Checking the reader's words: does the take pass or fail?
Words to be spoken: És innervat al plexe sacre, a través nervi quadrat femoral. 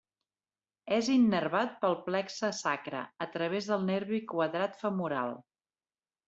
fail